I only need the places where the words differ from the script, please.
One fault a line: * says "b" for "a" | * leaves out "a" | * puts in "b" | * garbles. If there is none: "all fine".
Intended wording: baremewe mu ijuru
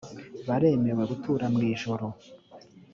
* puts in "gutura"